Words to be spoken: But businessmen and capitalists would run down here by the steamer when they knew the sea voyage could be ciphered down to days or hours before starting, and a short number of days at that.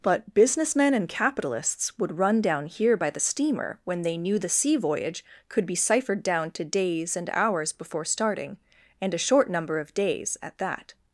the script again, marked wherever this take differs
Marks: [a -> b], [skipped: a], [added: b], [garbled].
But businessmen and capitalists would run down here by the steamer when they knew the sea voyage could be ciphered down to days [or -> and] hours before starting, and a short number of days at that.